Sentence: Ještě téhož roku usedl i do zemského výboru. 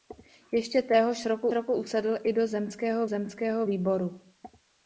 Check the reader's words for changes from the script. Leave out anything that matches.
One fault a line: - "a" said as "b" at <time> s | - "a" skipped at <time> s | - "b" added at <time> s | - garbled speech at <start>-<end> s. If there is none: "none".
- "roku" added at 1.5 s
- "zemského" added at 3.1 s